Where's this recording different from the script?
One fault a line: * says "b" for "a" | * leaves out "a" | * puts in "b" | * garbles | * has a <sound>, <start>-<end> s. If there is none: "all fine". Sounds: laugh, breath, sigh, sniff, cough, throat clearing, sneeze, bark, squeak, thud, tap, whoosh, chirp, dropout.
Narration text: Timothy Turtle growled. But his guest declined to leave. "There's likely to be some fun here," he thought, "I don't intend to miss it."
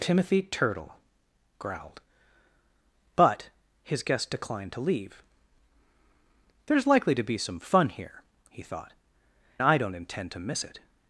all fine